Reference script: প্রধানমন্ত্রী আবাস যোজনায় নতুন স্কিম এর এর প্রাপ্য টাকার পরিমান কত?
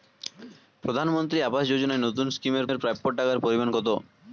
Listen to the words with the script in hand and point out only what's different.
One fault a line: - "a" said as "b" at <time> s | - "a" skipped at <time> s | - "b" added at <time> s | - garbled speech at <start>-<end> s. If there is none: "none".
none